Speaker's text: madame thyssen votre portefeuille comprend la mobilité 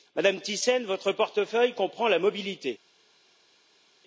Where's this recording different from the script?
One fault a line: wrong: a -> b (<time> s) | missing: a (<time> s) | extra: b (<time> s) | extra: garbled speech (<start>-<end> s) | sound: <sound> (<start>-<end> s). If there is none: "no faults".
no faults